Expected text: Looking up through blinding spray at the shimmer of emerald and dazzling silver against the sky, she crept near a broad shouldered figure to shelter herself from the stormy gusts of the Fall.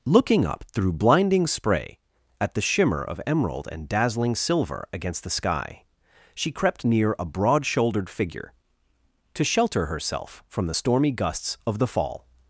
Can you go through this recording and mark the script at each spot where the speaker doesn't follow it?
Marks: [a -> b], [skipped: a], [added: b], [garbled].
Looking up through blinding spray at the shimmer of emerald and dazzling silver against the sky, she crept near a broad shouldered figure to shelter herself from the stormy gusts of the Fall.